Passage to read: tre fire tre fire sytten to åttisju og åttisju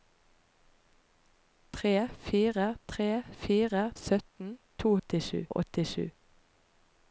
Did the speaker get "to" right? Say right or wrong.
right